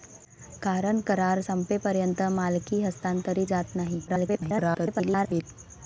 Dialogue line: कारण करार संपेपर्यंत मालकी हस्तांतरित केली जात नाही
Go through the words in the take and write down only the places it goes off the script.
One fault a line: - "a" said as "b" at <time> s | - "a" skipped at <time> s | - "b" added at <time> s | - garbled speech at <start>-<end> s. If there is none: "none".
- "केली" skipped at 3.5 s
- garbled speech at 4.1-5.4 s